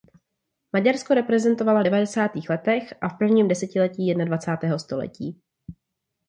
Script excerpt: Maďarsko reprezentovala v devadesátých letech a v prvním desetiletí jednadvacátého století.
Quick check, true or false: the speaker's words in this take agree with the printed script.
true